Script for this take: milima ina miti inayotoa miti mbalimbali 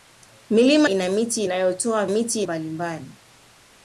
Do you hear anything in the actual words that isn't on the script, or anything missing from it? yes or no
no